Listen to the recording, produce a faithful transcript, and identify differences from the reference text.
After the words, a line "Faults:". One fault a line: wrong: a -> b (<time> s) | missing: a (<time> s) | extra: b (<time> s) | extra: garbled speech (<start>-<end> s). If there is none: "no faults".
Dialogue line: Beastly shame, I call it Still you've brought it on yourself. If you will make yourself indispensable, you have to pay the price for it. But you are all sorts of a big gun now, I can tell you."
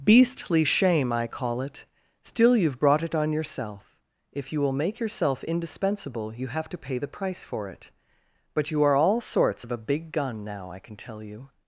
Beastly shame, I call it Still you've brought it on yourself. If you will make yourself indispensable, you have to pay the price for it. But you are all sorts of a big gun now, I can tell you."
Faults:
no faults